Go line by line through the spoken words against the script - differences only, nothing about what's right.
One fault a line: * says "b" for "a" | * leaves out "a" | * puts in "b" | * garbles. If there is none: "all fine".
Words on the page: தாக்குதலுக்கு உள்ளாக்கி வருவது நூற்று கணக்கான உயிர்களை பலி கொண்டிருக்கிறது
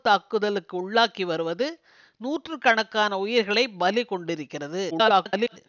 * garbles